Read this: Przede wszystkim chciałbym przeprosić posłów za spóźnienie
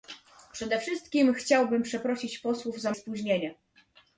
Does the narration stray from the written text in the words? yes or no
no